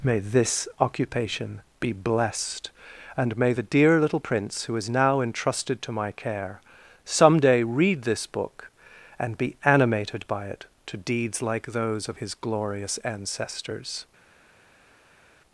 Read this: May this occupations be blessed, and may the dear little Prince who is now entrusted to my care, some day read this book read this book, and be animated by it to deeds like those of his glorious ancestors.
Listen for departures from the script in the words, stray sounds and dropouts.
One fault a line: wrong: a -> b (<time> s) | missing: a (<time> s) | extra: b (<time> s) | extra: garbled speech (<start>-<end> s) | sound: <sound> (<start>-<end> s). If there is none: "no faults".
wrong: occupations -> occupation (0.8 s)
missing: read this book (8.7 s)